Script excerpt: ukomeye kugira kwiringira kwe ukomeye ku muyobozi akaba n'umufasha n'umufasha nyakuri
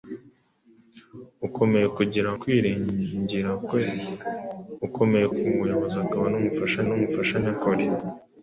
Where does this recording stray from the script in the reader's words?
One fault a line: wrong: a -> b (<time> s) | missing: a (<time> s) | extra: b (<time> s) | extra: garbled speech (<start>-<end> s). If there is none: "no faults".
no faults